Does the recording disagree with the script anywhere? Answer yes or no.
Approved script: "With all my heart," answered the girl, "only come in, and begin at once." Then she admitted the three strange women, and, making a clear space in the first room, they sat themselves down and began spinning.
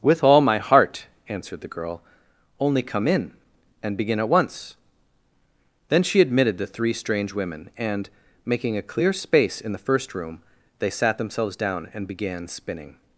no